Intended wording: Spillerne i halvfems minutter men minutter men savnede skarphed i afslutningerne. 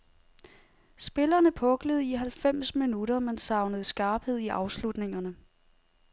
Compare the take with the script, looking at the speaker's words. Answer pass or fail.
fail